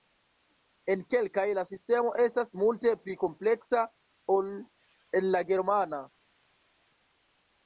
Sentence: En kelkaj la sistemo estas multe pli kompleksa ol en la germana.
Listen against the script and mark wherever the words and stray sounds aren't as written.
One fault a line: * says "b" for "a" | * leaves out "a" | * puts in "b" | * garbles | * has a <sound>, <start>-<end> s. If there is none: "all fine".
all fine